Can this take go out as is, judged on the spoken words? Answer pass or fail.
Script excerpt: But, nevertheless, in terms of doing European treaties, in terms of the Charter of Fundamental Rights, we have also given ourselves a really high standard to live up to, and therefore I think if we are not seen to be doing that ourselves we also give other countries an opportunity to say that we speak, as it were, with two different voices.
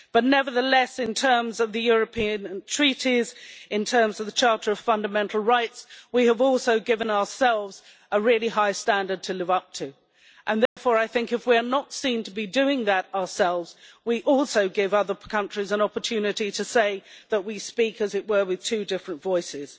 fail